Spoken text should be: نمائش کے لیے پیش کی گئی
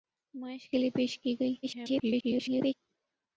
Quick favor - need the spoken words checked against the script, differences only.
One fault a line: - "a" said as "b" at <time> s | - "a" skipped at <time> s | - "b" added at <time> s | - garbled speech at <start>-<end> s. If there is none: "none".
- garbled speech at 1.6-2.7 s